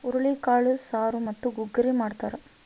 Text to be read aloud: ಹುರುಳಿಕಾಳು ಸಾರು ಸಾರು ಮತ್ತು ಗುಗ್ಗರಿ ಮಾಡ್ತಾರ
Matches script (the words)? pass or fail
fail